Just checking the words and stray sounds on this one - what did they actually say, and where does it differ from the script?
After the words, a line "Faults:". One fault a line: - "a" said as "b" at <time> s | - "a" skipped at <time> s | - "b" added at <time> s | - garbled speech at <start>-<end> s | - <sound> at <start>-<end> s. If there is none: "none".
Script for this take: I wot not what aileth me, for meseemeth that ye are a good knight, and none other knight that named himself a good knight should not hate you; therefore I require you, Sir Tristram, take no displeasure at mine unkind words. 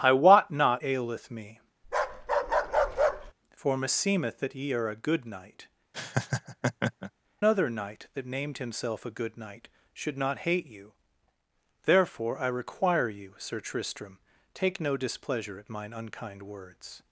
I wot not aileth me, for meseemeth that ye are a good knight, other knight that named himself a good knight should not hate you; therefore I require you, Sir Tristram, take no displeasure at mine unkind words.
Faults:
- "what" skipped at 0.8 s
- bark at 1.8-3.3 s
- "and none" skipped at 5.7 s
- laugh at 5.9-7.1 s